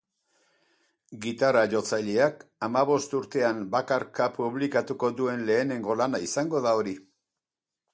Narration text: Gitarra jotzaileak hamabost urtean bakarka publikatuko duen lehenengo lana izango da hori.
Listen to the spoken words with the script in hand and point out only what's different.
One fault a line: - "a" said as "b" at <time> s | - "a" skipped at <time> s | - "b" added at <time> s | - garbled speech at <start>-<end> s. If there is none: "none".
none